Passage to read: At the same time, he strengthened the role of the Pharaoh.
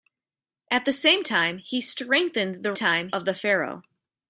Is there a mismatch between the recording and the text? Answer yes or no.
yes